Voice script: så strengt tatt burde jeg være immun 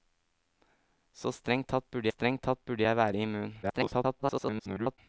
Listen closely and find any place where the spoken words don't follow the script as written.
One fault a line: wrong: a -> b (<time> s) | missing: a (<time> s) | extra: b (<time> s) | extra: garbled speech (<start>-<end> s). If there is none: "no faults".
extra: strengt tatt burde (2.1 s)
extra: garbled speech (3.6-5.0 s)